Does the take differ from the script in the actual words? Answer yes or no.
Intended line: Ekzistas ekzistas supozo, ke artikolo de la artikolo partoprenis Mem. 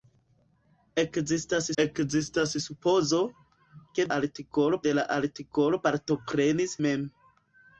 no